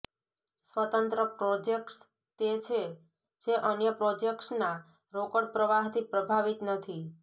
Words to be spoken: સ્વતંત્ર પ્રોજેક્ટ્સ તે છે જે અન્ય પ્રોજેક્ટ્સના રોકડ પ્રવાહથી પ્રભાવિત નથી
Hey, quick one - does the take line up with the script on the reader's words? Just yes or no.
yes